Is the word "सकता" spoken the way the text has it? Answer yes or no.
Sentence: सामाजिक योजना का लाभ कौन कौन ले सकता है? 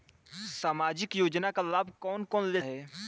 no